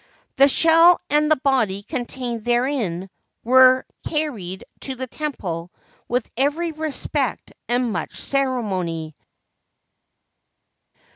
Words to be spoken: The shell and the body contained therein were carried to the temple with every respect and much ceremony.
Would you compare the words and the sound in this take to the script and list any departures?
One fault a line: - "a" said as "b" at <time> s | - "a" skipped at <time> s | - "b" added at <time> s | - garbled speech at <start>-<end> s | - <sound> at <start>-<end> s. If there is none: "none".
none